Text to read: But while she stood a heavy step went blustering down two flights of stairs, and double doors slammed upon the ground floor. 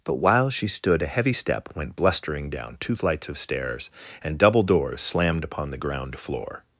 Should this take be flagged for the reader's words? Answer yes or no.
no